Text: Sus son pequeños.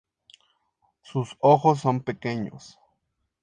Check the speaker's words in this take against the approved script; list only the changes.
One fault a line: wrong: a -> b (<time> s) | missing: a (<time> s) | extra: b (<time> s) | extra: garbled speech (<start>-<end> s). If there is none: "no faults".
extra: ojos (1.4 s)